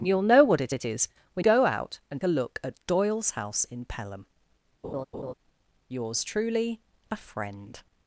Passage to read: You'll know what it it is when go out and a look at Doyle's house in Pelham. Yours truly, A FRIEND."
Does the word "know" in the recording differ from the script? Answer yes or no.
no